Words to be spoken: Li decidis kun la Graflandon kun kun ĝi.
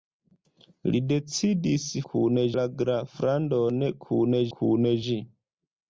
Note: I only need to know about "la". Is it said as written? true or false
true